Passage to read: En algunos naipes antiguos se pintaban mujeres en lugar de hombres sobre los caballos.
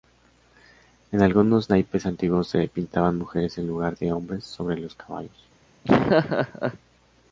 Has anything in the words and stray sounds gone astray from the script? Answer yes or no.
yes